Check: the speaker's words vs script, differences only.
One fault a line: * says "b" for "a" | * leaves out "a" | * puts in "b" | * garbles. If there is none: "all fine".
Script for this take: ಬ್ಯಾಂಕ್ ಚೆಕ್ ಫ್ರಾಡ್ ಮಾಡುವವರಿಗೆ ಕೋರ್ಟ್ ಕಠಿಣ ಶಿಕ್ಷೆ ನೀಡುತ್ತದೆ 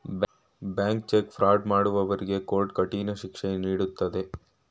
all fine